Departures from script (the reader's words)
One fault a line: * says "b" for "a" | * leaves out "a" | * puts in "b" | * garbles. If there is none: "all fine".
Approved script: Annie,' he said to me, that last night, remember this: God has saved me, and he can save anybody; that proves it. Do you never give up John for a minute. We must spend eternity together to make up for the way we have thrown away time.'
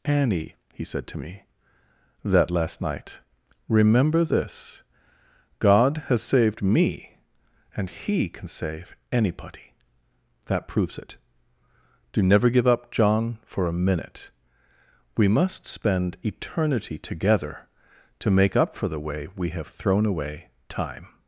* leaves out "you"